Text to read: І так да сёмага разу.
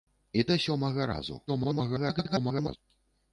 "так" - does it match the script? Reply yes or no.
no